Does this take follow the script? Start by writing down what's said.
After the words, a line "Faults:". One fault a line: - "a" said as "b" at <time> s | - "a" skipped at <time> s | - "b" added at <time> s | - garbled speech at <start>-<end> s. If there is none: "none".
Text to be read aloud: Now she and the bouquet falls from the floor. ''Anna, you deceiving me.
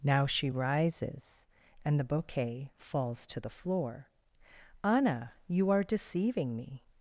Now she rises, and the bouquet falls to the floor. ''Anna, you are deceiving me.
Faults:
- "rises" added at 0.5 s
- "from" said as "to" at 3.3 s
- "are" added at 5.7 s